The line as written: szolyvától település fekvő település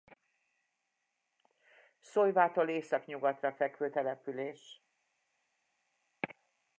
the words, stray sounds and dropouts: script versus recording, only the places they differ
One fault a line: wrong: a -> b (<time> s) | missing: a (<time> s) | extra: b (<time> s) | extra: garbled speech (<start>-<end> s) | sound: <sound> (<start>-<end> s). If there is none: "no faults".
wrong: település -> északnyugatra (2.7 s)